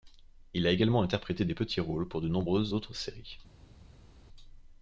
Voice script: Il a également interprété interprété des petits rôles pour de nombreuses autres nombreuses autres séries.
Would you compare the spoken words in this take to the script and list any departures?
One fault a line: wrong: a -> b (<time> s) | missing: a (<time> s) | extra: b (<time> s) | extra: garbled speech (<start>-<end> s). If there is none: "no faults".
missing: interprété (1.4 s)
missing: nombreuses autres (3.0 s)